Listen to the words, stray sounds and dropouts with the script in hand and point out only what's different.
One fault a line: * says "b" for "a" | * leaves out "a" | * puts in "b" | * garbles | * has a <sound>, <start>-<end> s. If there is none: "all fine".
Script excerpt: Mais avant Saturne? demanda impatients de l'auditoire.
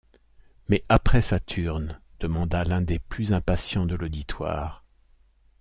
* says "après" for "avant"
* puts in "l'un des plus"